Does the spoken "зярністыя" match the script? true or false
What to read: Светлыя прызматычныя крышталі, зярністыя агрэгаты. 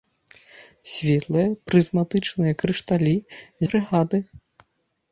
false